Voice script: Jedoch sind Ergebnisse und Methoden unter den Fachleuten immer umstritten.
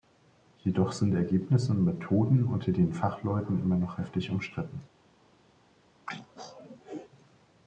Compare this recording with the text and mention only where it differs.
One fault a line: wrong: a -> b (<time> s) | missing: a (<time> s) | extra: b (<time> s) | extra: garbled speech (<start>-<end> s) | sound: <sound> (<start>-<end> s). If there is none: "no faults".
extra: noch heftig (3.8 s)
sound: throat clearing (6.1-7.1 s)